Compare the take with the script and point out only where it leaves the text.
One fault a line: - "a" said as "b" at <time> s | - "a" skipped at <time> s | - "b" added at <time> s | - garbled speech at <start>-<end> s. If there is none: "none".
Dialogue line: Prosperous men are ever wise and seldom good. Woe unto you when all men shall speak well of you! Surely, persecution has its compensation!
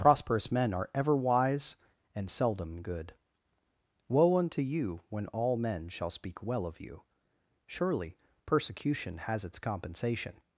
none